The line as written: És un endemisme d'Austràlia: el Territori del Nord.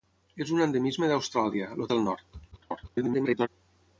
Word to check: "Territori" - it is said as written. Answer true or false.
false